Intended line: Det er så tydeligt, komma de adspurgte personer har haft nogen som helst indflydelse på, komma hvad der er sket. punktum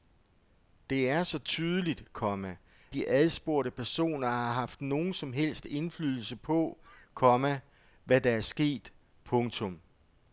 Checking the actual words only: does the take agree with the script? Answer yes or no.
yes